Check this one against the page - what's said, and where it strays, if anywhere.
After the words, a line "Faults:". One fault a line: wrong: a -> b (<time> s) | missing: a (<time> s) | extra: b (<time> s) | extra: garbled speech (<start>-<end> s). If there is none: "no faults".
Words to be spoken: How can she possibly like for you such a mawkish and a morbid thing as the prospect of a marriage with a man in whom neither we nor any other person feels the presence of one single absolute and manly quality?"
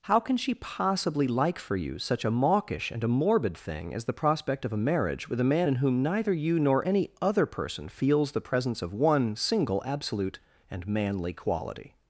How can she possibly like for you such a mawkish and a morbid thing as the prospect of a marriage with a man in whom neither you nor any other person feels the presence of one single absolute and manly quality?"
Faults:
wrong: we -> you (6.3 s)